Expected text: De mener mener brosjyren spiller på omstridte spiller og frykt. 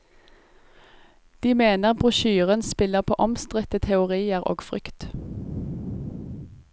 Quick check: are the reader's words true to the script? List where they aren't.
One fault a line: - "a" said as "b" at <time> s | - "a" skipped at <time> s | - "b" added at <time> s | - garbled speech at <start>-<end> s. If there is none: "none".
- "mener" skipped at 1.9 s
- "spiller" said as "teorier" at 3.8 s